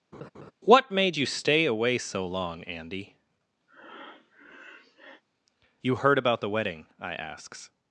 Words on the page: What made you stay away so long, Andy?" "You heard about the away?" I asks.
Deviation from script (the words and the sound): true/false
true